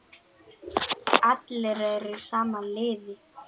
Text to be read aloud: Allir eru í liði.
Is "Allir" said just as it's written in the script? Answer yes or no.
yes